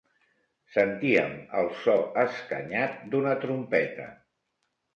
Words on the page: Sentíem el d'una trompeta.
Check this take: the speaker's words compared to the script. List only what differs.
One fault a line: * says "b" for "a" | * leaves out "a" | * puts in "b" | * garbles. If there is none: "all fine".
* puts in "so escanyat"